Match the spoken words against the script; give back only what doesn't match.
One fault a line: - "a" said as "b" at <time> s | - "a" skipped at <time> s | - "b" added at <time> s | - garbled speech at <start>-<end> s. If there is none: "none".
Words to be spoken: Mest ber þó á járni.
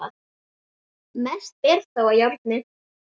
none